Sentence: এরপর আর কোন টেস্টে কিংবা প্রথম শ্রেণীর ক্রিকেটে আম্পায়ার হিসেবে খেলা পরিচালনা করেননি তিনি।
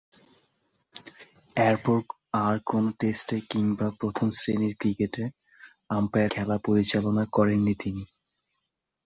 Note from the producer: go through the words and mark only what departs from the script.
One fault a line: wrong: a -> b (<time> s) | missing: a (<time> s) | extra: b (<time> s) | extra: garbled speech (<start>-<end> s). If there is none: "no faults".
missing: হিসেবে (6.3 s)